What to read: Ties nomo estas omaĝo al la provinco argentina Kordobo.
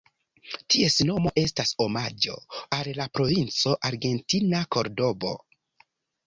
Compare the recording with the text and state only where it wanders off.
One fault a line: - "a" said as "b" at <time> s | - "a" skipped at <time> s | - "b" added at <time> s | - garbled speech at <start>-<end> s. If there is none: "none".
none